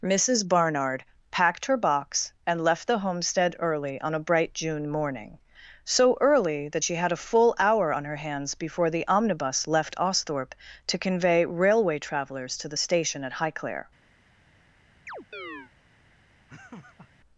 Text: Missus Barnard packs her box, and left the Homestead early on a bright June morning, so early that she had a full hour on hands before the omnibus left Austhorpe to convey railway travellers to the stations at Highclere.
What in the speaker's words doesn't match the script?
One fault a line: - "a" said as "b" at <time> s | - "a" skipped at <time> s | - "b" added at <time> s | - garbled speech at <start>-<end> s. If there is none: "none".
- "packs" said as "packed" at 1.3 s
- "her" added at 8.0 s
- "stations" said as "station" at 12.8 s